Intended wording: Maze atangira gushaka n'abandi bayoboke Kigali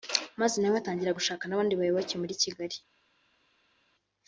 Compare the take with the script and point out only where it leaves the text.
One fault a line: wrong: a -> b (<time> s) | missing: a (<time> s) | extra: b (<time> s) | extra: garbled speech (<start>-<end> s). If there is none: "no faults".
extra: nawe (0.6 s)
extra: muri (2.2 s)